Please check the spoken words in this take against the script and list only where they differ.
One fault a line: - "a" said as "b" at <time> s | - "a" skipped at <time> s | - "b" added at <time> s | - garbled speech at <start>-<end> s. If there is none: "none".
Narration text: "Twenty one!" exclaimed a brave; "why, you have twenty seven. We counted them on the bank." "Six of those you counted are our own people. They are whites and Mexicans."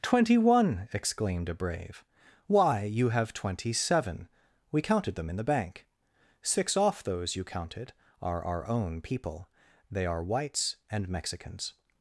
- "on" said as "in" at 5.3 s
- "of" said as "off" at 6.8 s